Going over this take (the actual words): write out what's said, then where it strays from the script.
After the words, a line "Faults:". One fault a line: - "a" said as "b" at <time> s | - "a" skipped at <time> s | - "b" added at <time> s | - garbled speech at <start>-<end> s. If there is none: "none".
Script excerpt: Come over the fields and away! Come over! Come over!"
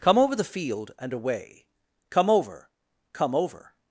Come over the field and away! Come over! Come over!"
Faults:
- "fields" said as "field" at 0.4 s